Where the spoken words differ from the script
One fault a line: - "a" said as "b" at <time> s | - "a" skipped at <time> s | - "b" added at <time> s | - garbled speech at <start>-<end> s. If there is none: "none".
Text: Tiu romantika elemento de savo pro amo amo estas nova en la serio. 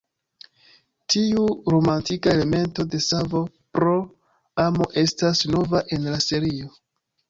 - "amo" skipped at 4.9 s